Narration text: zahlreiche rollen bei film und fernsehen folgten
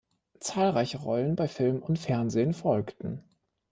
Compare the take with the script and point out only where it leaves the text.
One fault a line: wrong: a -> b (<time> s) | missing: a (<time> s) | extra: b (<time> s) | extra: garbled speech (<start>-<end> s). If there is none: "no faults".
no faults